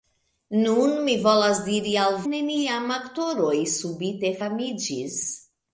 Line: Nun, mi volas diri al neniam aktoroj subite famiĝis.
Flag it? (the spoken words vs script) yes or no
no